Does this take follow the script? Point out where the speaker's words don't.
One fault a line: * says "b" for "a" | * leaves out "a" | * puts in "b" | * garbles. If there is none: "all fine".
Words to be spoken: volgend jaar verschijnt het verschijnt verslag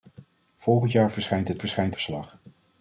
all fine